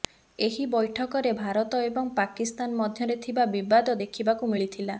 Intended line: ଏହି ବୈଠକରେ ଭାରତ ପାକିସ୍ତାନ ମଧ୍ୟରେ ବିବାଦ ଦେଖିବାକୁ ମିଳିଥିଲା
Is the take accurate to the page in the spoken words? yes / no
no